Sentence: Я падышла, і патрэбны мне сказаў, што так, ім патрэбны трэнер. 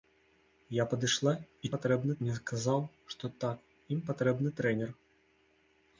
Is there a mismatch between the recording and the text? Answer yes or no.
no